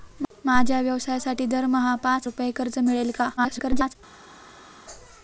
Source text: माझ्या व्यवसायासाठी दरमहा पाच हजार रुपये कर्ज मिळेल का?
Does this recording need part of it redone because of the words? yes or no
yes